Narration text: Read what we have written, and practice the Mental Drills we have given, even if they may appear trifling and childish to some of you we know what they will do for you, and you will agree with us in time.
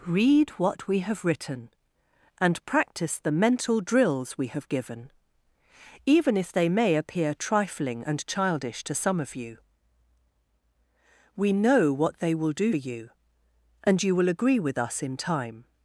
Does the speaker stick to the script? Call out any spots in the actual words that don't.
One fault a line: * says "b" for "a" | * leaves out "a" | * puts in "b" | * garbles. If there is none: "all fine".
* leaves out "for"